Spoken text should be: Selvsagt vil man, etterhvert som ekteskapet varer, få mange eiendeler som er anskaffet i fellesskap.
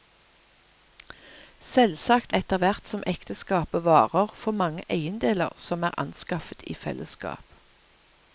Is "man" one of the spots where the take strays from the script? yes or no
yes